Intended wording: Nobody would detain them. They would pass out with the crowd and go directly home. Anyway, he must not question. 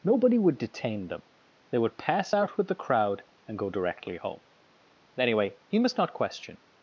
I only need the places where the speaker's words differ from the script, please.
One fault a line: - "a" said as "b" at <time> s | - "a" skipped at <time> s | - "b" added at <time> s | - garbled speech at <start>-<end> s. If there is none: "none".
none